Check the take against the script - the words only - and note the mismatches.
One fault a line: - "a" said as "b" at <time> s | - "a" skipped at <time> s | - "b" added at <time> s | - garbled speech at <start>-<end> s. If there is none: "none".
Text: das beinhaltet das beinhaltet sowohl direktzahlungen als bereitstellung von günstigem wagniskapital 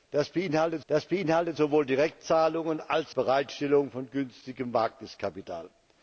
none